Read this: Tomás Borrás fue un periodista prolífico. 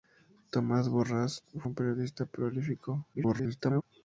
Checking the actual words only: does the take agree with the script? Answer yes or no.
no